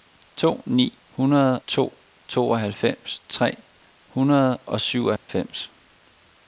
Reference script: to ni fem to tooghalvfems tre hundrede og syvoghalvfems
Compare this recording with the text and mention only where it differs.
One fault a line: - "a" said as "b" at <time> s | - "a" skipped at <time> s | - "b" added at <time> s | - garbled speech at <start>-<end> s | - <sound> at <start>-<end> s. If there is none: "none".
- "fem" said as "hundrede" at 1.1 s
- dropout at 5.2-5.3 s